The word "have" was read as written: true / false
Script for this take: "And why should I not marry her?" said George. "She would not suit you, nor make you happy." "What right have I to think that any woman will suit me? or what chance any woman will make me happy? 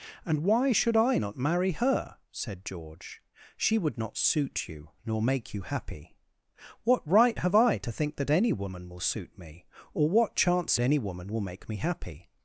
true